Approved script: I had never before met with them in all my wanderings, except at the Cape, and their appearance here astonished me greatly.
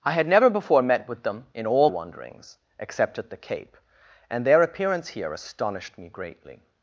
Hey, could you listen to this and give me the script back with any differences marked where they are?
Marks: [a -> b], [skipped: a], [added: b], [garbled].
I had never before met with them in all [skipped: my] wanderings, except at the Cape, and their appearance here astonished me greatly.